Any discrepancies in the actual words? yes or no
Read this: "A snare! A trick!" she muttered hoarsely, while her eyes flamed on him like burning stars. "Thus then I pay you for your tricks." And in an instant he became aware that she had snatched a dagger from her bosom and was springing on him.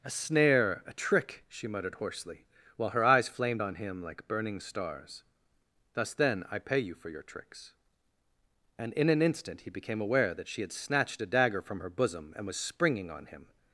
no